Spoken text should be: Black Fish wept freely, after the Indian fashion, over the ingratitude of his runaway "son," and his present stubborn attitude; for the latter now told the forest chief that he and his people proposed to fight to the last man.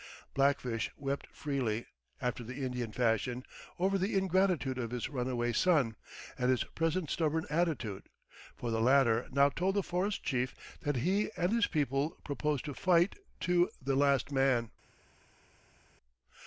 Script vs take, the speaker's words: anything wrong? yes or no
no